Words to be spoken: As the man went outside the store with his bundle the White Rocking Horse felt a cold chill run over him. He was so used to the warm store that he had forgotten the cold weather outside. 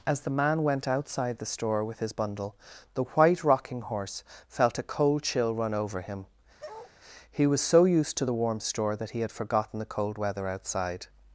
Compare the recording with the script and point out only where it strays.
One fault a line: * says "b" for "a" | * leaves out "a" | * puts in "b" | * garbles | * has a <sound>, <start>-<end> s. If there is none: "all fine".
* has a bark, 6.6-6.9 s